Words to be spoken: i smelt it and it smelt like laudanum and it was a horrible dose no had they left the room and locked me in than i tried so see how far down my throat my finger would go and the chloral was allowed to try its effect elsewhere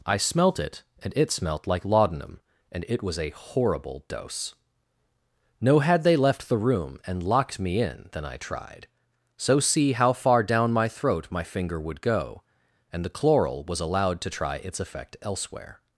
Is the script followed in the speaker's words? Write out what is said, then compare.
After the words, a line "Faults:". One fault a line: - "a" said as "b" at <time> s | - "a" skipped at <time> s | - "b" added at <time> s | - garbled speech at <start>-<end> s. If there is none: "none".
i smelt it and it smelt like laudanum and it was a horrible dose no had they left the room and locked me in than i tried so see how far down my throat my finger would go and the chloral was allowed to try its effect elsewhere
Faults:
none